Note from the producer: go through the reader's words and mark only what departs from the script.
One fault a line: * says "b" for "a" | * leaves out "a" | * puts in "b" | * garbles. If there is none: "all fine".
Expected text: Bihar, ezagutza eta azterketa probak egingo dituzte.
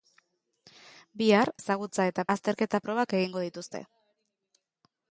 all fine